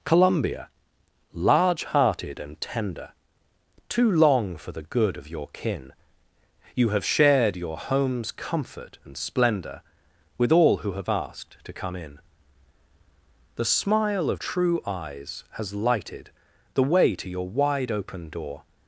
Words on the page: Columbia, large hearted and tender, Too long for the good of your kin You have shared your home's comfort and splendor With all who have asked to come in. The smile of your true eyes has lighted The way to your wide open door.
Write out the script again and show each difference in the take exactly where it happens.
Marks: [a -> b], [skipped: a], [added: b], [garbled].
Columbia, large hearted and tender, Too long for the good of your kin You have shared your home's comfort and splendor With all who have asked to come in. The smile of [skipped: your] true eyes has lighted The way to your wide open door.